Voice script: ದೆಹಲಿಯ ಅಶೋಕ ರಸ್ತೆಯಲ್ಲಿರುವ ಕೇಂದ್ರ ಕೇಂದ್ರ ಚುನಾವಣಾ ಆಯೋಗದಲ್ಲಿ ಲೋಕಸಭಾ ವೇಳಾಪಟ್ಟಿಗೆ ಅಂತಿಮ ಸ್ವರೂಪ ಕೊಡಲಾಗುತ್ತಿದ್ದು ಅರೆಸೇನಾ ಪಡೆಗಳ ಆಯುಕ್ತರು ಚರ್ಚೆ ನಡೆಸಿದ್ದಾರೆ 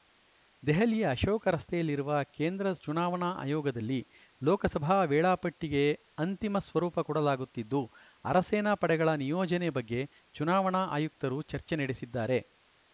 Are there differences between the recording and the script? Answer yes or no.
yes